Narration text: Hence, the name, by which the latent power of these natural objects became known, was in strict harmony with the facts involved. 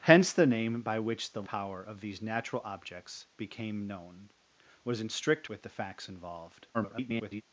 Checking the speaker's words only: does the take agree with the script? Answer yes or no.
no